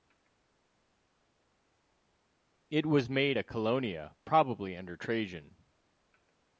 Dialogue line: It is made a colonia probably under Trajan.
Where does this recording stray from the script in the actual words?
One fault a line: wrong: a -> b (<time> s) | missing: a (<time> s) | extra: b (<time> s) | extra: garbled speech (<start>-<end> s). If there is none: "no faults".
wrong: is -> was (2.9 s)